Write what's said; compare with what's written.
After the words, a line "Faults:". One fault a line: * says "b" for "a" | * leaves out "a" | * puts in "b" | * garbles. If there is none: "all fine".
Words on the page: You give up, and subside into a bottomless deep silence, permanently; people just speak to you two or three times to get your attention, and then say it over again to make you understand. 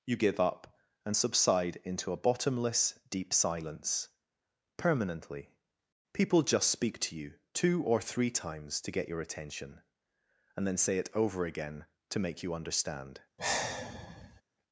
You give up, and subside into a bottomless deep silence, permanently; people just speak to you two or three times to get your attention, and then say it over again to make you understand.
Faults:
all fine